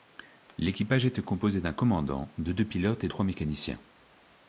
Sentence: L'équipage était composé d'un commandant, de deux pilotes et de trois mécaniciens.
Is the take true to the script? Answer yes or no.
no